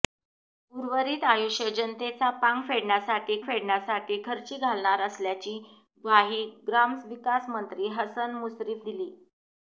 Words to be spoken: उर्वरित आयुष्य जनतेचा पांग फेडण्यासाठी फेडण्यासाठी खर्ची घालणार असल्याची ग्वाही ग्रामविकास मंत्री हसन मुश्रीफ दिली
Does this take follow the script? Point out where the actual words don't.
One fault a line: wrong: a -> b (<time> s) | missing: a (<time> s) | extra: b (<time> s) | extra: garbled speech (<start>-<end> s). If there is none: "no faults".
no faults